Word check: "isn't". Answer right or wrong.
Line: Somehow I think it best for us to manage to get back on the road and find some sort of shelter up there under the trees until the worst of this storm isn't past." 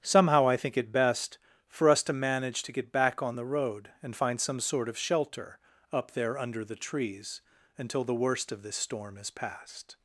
wrong